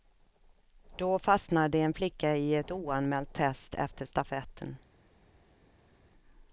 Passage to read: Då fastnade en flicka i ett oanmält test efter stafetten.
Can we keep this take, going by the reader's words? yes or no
yes